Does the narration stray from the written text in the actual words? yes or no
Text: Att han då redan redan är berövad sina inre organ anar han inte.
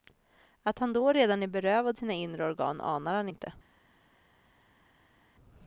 yes